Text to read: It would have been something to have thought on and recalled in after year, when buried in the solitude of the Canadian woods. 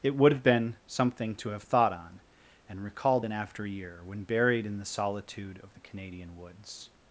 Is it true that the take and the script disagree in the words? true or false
false